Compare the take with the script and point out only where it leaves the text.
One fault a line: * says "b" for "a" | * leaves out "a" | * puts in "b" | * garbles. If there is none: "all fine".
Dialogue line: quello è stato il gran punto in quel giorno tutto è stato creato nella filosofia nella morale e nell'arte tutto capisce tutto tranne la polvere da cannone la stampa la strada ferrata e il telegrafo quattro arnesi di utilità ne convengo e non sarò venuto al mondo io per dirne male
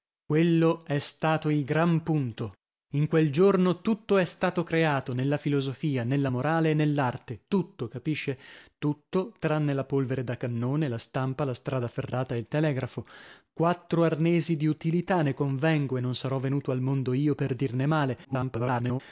* garbles